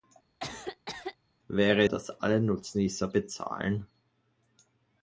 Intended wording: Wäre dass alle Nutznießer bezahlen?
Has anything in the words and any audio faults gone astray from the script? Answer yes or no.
yes